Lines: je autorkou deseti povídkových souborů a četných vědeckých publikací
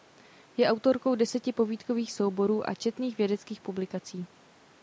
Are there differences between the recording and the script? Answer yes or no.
no